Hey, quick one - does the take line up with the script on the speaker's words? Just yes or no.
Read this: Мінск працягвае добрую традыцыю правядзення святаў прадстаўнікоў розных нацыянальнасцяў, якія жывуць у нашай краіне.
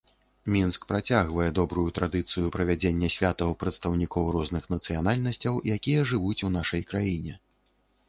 yes